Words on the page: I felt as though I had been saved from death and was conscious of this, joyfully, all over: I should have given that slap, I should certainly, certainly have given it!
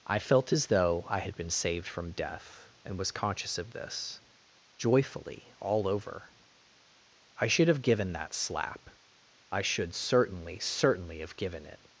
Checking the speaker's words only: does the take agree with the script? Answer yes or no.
yes